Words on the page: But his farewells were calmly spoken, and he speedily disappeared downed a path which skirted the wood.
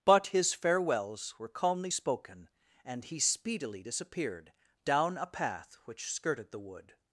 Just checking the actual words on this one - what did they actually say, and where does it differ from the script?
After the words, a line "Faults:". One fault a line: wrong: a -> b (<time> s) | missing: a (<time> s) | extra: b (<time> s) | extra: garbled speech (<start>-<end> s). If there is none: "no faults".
But his farewells were calmly spoken, and he speedily disappeared down a path which skirted the wood.
Faults:
wrong: downed -> down (4.8 s)